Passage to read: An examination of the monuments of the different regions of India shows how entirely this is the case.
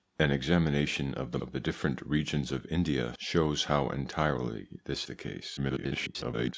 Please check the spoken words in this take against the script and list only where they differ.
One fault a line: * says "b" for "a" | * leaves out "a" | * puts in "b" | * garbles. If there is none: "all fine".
* leaves out "monuments"
* leaves out "is"
* garbles